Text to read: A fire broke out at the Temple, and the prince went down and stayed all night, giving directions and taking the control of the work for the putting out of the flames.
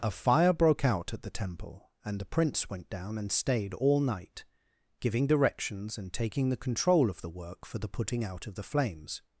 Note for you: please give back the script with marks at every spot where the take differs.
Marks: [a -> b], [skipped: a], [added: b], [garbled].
A fire broke out at the Temple, and the prince went down and stayed all night, giving directions and taking the control of the work for the putting out of the flames.